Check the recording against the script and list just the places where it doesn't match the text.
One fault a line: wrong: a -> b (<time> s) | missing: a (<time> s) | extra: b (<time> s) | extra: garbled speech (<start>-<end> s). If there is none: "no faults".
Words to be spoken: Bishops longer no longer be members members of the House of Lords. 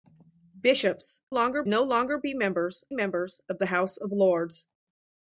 no faults